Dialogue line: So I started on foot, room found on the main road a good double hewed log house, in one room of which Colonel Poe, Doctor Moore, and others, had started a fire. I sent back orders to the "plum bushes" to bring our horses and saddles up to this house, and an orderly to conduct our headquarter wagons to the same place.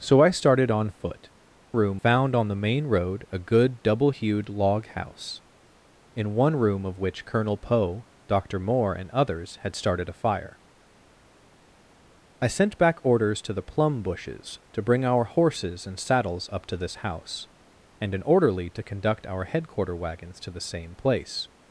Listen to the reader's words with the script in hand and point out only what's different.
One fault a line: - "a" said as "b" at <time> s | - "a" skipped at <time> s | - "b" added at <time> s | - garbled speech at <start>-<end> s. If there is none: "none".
none